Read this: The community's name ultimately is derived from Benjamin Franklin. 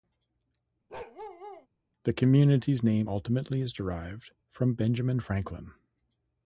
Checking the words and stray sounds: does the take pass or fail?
fail